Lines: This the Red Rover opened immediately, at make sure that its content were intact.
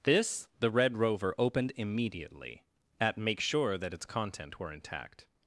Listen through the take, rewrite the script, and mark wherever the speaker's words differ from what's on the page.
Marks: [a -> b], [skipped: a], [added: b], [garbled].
This the Red Rover opened immediately, at make sure that its content were intact.